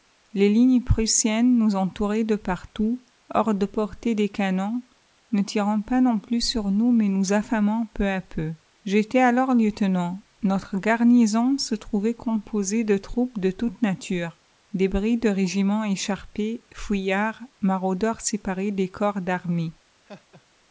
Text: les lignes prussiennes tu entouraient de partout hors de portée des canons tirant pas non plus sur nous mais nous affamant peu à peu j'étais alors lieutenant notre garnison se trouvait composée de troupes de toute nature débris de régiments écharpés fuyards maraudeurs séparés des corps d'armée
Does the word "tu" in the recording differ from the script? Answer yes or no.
yes